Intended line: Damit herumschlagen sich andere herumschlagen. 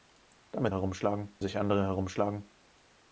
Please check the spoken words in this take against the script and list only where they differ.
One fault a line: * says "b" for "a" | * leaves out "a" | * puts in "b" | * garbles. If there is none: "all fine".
all fine